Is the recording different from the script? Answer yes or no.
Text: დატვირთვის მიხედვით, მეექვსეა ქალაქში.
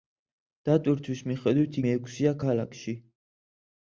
no